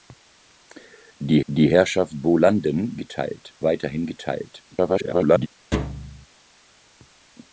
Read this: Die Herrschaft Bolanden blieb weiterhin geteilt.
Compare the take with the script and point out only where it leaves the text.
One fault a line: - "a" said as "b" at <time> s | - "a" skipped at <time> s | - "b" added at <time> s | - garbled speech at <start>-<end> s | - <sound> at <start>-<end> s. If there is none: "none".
- "die" added at 1.5 s
- "blieb" said as "geteilt" at 3.0 s
- garbled speech at 4.7-5.5 s
- thud at 5.7-6.3 s